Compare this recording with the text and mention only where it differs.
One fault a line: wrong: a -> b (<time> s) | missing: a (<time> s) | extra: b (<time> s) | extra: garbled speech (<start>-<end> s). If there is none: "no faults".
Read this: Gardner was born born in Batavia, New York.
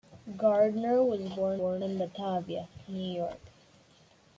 no faults